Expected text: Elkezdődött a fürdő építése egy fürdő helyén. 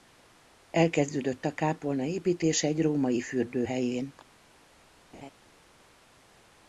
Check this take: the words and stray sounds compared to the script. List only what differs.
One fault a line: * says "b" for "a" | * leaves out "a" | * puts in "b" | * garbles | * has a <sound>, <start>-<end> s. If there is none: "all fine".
* says "kápolna" for "fürdő"
* puts in "római"
* has a laugh, 5.1-5.3 s